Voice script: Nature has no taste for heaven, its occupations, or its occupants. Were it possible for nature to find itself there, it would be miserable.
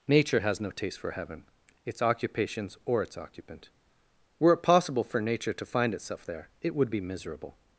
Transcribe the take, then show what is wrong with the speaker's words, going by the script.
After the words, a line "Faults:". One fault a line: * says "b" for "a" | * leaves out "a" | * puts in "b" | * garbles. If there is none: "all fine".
Nature has no taste for heaven, its occupations, or its occupant. Were it possible for nature to find itself there, it would be miserable.
Faults:
* says "occupant" for "occupants"